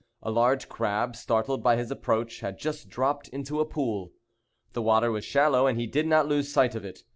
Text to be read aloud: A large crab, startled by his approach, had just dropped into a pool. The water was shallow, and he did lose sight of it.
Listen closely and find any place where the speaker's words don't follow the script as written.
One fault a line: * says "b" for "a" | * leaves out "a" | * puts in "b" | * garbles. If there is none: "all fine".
* puts in "not"